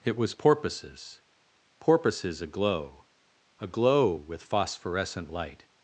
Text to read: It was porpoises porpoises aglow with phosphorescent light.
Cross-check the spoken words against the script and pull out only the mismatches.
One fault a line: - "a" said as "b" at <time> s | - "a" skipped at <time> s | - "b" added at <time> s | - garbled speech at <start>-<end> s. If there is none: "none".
- "aglow" added at 3.6 s